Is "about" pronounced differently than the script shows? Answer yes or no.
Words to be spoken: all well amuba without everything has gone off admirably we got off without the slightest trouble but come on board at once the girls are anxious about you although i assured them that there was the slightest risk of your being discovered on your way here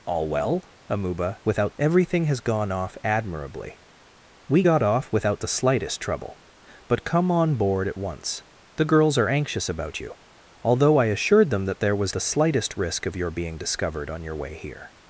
no